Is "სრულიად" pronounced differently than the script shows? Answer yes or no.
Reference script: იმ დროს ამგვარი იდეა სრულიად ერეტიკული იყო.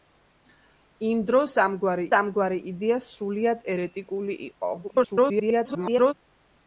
no